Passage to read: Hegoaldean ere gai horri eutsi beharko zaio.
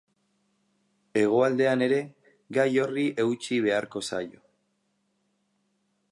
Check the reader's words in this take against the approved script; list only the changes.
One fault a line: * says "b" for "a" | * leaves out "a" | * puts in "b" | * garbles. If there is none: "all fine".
all fine